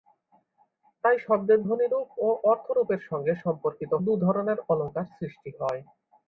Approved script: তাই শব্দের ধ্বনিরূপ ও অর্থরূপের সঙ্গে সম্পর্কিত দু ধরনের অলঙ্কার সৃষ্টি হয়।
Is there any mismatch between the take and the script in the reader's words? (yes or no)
no